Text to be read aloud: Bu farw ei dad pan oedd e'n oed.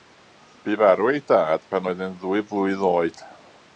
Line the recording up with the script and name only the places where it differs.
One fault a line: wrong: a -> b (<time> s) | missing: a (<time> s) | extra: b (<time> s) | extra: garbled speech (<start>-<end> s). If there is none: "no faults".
extra: ddwy flwydd (2.2 s)